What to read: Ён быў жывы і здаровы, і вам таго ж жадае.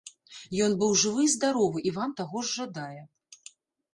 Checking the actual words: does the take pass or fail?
pass